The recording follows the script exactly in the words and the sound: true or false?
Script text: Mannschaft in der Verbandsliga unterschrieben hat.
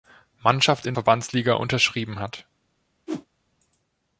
false